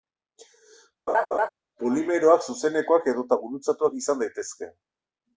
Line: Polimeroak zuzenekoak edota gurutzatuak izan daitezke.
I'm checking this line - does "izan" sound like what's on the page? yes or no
yes